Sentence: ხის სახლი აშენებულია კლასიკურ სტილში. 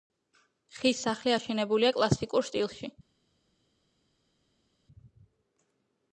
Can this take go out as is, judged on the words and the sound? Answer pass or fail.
pass